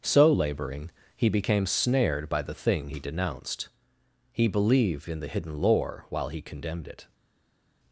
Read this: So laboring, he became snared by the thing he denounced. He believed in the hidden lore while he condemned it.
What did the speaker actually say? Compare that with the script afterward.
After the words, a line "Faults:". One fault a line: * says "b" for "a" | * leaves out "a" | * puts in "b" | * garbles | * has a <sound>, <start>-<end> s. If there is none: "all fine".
So laboring, he became snared by the thing he denounced. He believed in the hidden lore while he condemned it.
Faults:
all fine